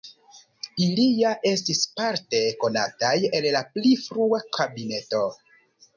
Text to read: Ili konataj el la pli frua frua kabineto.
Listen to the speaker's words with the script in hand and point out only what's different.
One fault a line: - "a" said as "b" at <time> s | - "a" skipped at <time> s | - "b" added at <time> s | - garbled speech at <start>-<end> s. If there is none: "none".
- "ja estis parte" added at 1.2 s
- "frua" skipped at 4.4 s